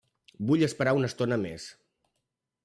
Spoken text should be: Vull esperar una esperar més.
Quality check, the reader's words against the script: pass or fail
fail